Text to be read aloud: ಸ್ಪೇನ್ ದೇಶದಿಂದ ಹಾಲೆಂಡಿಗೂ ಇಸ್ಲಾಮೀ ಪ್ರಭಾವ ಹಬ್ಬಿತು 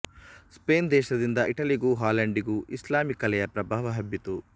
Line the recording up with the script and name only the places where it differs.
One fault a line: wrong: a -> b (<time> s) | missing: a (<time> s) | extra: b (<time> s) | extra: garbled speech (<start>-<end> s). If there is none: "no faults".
extra: ಇಟಲಿಗೂ (1.5 s)
extra: ಕಲೆಯ (3.2 s)